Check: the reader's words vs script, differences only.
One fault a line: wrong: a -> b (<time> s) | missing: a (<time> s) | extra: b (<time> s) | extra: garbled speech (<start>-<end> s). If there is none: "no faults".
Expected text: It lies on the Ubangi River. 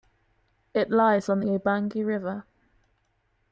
no faults